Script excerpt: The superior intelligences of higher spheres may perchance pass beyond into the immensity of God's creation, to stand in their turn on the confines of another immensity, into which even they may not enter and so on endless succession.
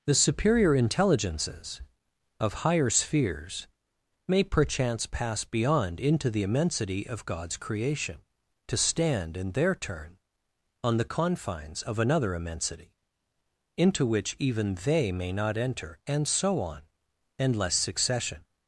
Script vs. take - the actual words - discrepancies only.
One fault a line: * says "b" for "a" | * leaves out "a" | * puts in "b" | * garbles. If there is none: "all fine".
all fine